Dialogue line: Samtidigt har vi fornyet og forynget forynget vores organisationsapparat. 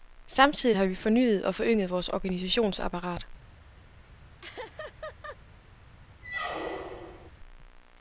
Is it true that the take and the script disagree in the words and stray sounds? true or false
true